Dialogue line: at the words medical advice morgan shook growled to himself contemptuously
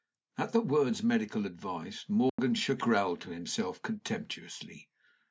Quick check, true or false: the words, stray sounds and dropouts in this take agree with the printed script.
false